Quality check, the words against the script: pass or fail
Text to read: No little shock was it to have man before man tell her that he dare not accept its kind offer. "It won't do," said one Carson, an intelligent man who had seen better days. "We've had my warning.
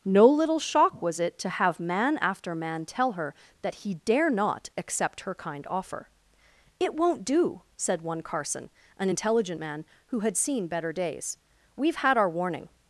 fail